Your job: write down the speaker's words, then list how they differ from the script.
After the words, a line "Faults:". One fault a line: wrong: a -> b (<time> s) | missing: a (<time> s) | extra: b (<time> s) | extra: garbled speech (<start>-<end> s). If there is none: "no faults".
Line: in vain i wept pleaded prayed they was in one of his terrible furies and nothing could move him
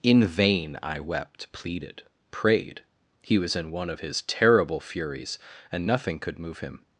in vain i wept pleaded prayed he was in one of his terrible furies and nothing could move him
Faults:
wrong: they -> he (3.2 s)